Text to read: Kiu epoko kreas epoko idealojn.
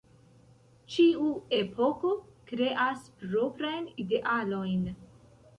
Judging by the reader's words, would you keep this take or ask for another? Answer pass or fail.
fail